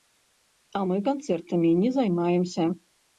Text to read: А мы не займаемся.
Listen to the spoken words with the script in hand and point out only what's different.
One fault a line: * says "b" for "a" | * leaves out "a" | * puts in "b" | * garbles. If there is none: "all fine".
* puts in "канцэртамі"